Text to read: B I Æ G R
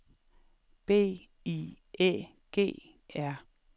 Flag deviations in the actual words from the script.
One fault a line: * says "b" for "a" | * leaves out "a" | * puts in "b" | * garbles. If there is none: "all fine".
all fine